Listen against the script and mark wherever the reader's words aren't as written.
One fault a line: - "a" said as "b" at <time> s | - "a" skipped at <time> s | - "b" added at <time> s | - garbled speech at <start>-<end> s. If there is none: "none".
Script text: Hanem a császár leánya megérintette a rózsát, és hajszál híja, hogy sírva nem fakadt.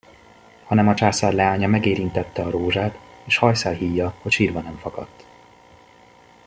none